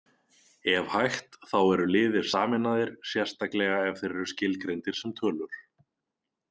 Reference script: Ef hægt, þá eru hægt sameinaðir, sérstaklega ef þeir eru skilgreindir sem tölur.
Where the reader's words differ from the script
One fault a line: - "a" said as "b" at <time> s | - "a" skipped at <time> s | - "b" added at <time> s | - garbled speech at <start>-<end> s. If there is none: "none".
- "hægt" said as "liðir" at 1.9 s